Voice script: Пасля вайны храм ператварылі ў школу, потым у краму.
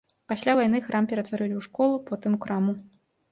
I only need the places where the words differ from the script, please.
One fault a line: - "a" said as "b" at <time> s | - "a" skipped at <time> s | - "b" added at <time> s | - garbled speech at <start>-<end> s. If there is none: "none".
none